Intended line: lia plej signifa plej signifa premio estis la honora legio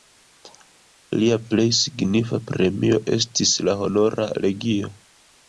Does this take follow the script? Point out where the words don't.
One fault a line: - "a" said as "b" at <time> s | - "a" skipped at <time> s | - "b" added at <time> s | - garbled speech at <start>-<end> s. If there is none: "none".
- "plej signifa" skipped at 2.4 s